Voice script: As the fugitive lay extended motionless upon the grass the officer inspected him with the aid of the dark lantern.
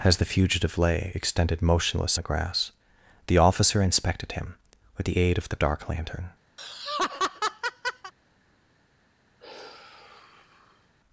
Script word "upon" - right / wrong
wrong